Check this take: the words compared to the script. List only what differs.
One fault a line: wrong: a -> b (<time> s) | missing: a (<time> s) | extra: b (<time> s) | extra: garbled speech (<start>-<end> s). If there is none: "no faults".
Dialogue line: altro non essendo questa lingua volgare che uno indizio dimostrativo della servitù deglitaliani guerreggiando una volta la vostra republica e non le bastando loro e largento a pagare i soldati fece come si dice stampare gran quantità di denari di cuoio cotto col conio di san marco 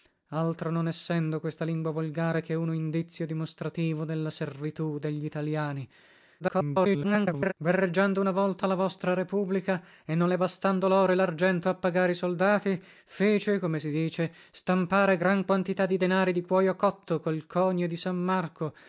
extra: garbled speech (6.4-7.5 s)